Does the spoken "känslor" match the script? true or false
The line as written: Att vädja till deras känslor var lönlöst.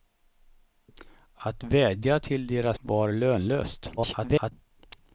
false